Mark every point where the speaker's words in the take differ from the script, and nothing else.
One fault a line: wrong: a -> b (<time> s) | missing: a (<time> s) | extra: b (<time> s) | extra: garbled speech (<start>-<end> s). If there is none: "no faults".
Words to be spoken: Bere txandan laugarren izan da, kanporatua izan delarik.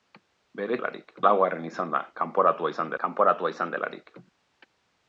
wrong: txandan -> delarik (0.8 s)
extra: kanporatua izan (3.0 s)